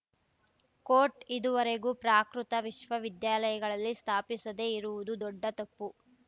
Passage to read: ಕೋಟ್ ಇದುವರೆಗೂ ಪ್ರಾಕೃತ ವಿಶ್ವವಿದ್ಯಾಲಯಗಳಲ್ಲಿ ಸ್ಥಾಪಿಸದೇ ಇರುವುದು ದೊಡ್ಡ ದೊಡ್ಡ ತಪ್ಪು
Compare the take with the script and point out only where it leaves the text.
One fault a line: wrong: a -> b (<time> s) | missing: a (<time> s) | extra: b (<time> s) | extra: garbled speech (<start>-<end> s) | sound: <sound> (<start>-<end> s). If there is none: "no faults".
missing: ದೊಡ್ಡ (5.4 s)